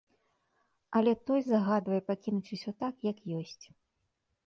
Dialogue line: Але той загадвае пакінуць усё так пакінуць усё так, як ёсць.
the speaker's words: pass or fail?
fail